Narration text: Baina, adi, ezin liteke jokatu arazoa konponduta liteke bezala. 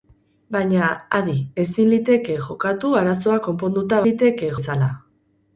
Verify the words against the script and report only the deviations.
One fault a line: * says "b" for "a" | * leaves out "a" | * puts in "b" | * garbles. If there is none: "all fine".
all fine